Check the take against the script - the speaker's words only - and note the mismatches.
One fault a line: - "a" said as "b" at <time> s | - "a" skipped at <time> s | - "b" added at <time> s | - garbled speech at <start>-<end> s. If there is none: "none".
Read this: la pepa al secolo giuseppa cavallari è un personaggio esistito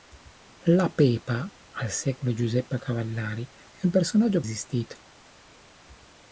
none